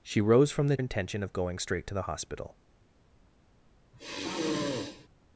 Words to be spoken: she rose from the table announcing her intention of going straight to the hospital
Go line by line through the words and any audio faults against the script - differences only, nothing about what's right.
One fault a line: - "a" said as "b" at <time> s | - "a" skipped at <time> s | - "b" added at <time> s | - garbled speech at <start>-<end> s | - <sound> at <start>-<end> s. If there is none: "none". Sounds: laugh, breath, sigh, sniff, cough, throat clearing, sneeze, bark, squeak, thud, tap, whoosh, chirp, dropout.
- "table announcing her" skipped at 0.8 s
- sigh at 3.9-5.1 s